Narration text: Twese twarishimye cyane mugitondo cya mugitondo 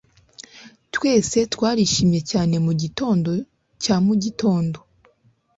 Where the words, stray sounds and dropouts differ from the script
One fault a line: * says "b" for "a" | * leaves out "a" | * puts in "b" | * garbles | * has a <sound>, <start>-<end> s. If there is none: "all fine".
all fine